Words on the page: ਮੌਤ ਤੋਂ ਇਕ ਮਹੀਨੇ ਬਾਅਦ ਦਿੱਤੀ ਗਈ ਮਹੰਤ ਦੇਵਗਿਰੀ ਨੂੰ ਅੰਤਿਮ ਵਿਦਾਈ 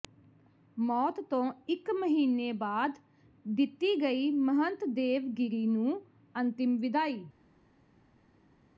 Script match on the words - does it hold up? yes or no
yes